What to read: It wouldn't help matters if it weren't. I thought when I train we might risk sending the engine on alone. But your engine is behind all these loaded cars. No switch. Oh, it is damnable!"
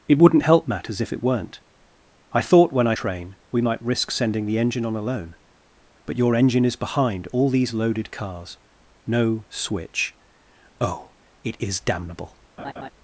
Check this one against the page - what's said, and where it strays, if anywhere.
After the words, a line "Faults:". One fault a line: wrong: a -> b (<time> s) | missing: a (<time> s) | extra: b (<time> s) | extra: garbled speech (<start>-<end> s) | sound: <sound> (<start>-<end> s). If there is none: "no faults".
It wouldn't help matters if it weren't. I thought when I train we might risk sending the engine on alone. But your engine is behind all these loaded cars. No switch. Oh, it is damnable!"
Faults:
sound: laugh (12.6-12.9 s)